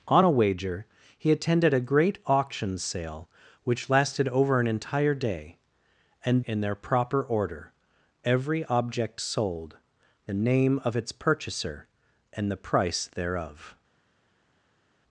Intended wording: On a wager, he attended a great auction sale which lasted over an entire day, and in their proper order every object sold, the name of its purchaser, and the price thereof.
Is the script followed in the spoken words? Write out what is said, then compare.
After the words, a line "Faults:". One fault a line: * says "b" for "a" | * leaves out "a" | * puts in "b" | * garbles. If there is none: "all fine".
On a wager, he attended a great auction sale which lasted over an entire day, and in their proper order every object sold, the name of its purchaser, and the price thereof.
Faults:
all fine